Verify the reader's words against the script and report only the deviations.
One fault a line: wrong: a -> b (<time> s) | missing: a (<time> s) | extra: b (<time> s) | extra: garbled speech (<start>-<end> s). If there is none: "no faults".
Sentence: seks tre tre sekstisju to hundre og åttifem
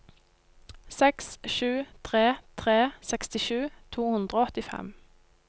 extra: sju (1.6 s)